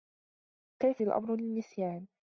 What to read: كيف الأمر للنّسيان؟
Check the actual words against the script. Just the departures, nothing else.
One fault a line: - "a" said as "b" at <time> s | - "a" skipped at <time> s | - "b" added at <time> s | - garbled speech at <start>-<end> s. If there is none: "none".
none